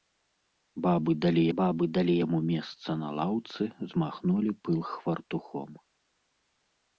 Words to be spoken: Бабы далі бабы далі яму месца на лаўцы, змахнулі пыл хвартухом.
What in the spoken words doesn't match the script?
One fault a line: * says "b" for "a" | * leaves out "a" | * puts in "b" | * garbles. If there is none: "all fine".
all fine